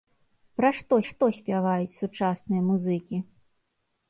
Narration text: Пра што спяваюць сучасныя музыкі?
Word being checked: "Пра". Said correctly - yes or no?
yes